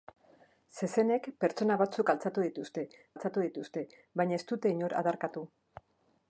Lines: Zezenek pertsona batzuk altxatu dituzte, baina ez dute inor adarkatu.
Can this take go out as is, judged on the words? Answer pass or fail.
fail